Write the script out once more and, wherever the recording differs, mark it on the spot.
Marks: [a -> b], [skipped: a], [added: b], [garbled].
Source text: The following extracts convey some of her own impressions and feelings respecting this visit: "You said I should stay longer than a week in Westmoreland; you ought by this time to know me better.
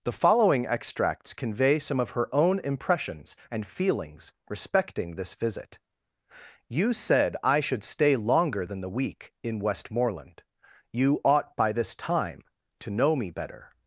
The following extracts convey some of her own impressions and feelings respecting this visit: "You said I should stay longer than [a -> the] week in Westmoreland; you ought by this time to know me better.